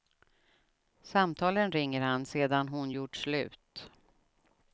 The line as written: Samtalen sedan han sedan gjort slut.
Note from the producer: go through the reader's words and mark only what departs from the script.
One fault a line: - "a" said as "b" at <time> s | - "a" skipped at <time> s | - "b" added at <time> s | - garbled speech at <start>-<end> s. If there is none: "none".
- "sedan" said as "ringer" at 1.7 s
- "hon" added at 2.7 s